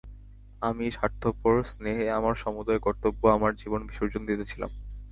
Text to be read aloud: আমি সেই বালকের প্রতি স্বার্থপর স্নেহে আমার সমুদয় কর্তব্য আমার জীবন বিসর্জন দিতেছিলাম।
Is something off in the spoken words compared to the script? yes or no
yes